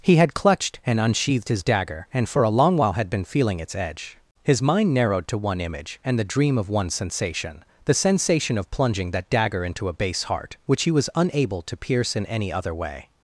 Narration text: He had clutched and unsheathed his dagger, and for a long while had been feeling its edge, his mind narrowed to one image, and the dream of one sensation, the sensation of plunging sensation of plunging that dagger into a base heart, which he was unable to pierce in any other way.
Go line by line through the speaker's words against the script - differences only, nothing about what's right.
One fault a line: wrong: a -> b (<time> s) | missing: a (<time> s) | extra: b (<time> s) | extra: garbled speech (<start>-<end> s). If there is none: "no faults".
missing: sensation of plunging (9.1 s)